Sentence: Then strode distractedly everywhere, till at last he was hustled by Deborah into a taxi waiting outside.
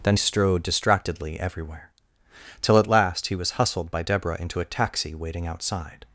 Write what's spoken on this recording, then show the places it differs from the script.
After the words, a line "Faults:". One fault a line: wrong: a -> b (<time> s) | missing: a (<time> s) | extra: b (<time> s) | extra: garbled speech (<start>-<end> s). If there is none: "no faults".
Then strode distractedly everywhere, till at last he was hustled by Deborah into a taxi waiting outside.
Faults:
no faults